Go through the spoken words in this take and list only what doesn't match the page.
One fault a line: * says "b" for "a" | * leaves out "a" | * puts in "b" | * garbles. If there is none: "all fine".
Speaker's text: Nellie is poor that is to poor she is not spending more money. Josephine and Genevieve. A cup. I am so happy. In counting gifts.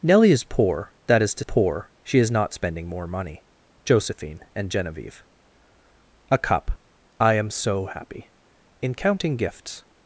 all fine